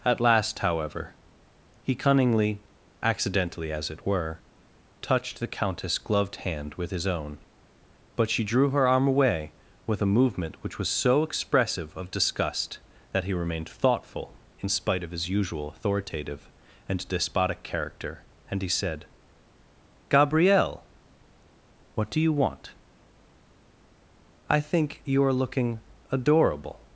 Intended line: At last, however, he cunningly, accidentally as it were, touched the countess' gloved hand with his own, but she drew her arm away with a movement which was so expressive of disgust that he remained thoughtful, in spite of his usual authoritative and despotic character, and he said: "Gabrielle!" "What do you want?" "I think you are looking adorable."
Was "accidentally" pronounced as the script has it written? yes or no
yes